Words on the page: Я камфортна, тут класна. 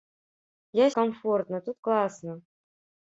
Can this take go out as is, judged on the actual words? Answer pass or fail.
pass